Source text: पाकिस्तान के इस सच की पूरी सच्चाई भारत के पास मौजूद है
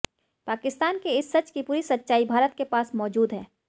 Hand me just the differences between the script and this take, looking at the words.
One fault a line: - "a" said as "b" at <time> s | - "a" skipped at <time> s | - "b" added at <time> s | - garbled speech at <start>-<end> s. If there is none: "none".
none